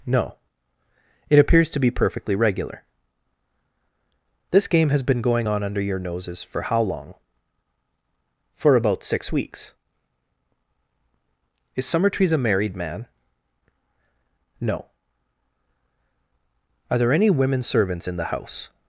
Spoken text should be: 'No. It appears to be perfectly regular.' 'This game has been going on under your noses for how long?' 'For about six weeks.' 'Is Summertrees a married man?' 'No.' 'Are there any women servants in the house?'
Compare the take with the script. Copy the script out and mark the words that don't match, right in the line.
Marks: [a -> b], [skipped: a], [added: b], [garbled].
'No. It appears to be perfectly regular.' 'This game has been going on under your noses for how long?' 'For about six weeks.' 'Is Summertrees a married man?' 'No.' 'Are there any women servants in the house?'